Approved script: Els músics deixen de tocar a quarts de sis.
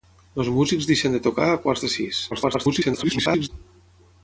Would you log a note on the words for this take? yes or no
yes